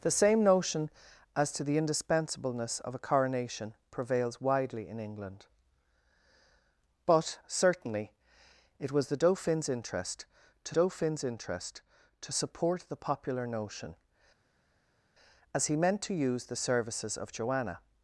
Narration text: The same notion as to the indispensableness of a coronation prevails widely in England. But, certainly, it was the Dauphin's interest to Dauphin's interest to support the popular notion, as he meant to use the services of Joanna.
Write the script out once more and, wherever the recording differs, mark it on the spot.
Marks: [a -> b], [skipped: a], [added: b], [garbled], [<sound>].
The same notion as to the indispensableness of a coronation prevails widely in England. But, certainly, it was the Dauphin's interest to Dauphin's interest to support the popular notion, as he meant to use the services of Joanna.